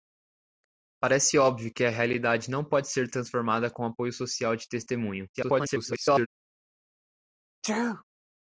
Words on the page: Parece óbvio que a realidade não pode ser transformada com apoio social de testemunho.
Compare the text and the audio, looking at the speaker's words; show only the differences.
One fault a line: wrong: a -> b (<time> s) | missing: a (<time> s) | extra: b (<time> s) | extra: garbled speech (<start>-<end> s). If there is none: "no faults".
extra: garbled speech (5.3-6.3 s)